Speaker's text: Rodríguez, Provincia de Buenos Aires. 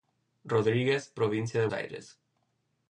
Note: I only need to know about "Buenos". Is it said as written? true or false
false